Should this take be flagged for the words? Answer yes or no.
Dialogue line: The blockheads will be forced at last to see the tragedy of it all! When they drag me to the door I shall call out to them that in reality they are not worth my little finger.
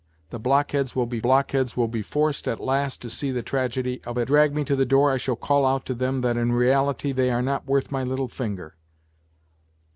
yes